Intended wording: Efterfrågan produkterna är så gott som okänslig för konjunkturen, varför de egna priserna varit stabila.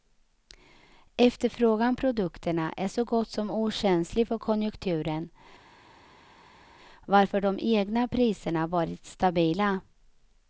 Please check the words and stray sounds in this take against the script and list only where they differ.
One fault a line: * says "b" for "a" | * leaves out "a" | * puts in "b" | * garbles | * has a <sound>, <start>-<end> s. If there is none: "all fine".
all fine